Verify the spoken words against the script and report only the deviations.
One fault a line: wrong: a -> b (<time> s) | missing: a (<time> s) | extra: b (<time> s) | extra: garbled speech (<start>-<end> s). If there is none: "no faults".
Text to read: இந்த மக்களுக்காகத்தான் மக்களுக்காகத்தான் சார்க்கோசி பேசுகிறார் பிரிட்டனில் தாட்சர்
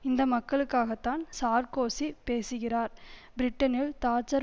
missing: மக்களுக்காகத்தான் (1.2 s)